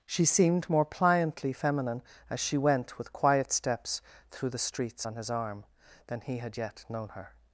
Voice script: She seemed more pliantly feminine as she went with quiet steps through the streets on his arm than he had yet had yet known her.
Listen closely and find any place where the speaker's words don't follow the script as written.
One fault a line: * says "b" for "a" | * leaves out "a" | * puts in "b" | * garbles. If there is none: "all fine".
* leaves out "had yet"